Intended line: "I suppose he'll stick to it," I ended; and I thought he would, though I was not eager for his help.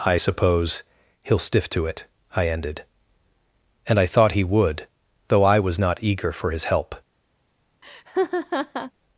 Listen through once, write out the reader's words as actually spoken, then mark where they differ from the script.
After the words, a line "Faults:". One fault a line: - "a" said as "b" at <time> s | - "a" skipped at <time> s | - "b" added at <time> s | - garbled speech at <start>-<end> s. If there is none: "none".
"I suppose he'll stiff to it," I ended; and I thought he would, though I was not eager for his help.
Faults:
- "stick" said as "stiff" at 1.4 s